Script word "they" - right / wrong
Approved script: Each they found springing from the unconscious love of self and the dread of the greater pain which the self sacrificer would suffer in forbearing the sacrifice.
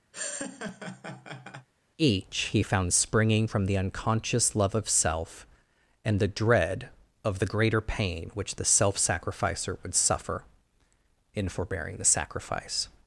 wrong